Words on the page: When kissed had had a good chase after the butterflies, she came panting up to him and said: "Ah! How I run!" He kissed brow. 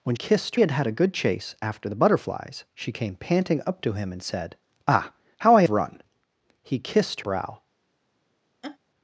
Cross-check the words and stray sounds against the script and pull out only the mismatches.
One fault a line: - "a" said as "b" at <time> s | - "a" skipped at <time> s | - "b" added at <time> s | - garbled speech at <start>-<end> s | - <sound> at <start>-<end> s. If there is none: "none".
- laugh at 8.6-8.8 s